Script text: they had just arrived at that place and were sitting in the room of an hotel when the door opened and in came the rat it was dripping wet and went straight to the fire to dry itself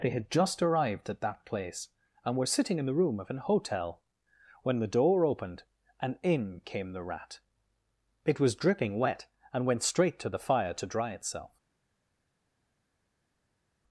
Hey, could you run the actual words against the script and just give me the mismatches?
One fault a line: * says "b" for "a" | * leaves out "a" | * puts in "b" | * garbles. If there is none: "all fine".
all fine